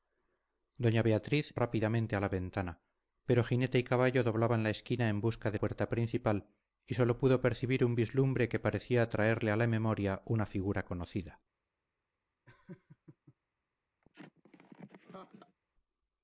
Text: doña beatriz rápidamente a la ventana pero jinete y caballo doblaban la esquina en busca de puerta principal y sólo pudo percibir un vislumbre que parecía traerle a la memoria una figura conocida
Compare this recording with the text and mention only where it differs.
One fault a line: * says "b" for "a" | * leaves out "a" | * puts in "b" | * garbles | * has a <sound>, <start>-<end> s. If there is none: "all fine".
* has a laugh, 12.5-13.4 s
* has a laugh, 14.0-15.6 s